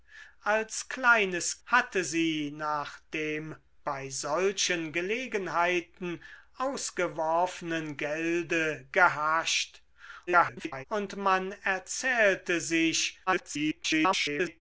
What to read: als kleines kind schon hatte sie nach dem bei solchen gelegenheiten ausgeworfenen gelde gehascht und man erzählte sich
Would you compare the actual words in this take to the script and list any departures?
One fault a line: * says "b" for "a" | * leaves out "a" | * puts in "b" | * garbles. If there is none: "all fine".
* leaves out "kind schon"
* garbles
* garbles